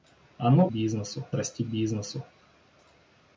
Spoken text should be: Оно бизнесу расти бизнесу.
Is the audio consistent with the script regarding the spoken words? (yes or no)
yes